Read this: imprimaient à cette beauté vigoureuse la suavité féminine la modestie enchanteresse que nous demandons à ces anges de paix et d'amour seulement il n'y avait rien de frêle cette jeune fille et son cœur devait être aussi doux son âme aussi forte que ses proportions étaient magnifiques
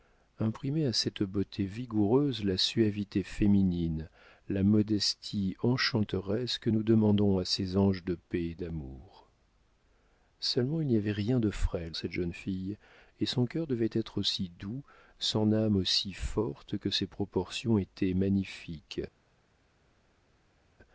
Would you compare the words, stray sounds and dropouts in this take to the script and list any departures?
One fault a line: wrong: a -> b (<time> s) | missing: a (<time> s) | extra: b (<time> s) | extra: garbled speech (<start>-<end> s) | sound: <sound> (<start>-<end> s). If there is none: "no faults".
no faults